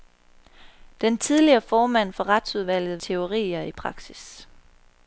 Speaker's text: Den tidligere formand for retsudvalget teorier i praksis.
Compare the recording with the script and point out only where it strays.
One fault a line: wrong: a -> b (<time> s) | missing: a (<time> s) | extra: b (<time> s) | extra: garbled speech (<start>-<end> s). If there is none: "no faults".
no faults